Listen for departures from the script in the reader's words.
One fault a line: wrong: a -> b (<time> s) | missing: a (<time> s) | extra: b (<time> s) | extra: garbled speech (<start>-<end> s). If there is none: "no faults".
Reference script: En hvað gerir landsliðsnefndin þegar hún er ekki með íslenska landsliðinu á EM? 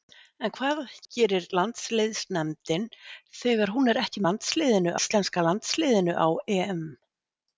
wrong: með -> landsliðinu (4.3 s)